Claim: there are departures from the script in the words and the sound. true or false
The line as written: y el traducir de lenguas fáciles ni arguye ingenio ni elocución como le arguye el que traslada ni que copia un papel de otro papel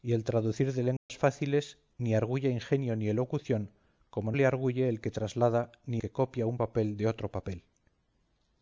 true